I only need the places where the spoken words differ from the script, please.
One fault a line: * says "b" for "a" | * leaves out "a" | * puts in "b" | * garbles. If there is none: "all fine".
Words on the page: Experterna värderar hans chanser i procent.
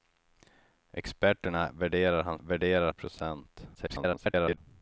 * says "värderar" for "chanser"
* garbles